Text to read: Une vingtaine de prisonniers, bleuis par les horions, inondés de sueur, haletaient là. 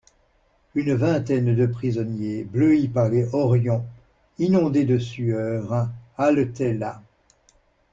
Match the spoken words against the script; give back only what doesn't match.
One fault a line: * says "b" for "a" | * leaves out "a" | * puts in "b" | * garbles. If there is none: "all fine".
all fine